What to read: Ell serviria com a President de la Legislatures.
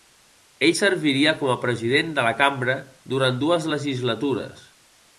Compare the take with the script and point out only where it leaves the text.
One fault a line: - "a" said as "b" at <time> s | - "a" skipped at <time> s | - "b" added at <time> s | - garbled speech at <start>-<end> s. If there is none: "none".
- "Cambra durant dues" added at 2.4 s